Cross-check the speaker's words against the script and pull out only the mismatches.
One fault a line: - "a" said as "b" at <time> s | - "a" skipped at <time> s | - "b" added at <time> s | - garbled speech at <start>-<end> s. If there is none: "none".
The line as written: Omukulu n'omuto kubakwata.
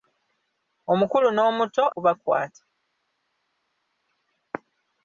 none